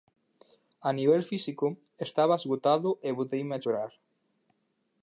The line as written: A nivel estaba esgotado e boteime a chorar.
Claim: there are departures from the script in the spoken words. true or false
true